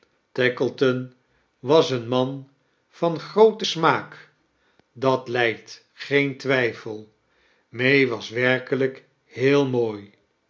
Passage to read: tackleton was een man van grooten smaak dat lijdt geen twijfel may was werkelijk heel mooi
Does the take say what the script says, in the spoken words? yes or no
yes